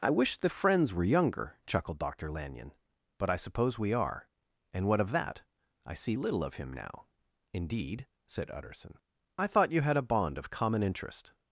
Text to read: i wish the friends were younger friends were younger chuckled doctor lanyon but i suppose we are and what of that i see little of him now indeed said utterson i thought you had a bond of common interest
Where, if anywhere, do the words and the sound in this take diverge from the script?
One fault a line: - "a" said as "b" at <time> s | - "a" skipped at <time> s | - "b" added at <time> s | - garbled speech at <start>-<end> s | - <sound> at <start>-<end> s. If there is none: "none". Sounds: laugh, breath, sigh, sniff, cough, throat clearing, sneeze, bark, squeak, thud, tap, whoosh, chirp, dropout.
- "friends were younger" skipped at 1.6 s